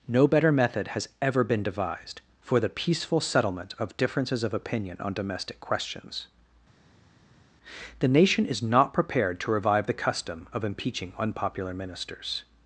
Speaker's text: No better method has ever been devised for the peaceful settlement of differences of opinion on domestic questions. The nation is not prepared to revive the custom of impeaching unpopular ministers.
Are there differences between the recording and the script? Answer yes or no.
no